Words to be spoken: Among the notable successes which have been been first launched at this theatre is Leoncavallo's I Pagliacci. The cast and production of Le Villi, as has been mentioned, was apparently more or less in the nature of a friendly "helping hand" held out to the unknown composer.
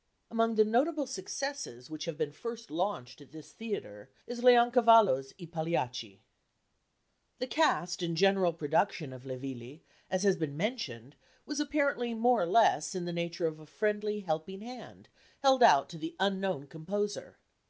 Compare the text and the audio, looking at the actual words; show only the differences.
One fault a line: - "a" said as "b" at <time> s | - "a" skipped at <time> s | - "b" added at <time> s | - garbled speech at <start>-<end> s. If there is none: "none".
- "been" skipped at 2.3 s
- "general" added at 8.1 s